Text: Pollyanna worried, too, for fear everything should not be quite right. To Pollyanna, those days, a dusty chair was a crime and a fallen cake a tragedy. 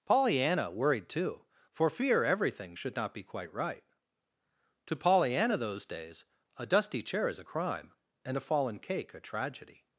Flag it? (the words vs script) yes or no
yes